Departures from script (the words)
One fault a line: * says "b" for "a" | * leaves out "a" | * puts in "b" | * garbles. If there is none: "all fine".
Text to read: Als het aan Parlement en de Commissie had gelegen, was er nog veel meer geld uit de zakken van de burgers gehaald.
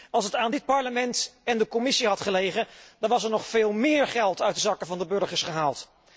* puts in "dit"
* puts in "dan"